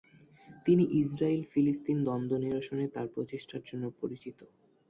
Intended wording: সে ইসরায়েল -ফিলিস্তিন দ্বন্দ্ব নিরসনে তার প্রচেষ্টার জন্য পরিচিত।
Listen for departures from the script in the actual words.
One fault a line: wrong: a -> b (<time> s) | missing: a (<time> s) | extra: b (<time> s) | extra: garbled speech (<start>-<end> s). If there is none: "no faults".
wrong: সে -> তিনি (0.7 s)